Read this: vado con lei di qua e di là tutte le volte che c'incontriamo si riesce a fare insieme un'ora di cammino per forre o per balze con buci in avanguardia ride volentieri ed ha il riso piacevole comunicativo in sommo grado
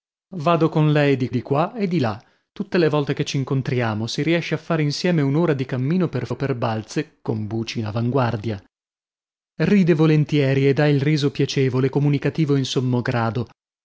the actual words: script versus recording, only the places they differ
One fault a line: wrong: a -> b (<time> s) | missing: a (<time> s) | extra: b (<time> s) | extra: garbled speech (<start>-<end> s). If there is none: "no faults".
extra: di (1.3 s)
missing: forre (6.3 s)